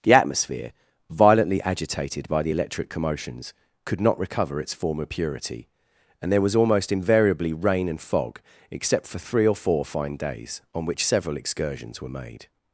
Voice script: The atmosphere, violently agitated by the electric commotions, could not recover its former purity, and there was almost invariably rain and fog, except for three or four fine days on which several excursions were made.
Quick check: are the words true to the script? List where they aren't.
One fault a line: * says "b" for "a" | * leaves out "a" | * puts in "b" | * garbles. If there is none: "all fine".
all fine